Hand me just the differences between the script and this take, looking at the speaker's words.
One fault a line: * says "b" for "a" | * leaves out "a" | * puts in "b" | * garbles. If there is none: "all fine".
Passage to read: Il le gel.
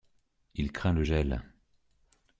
* puts in "craint"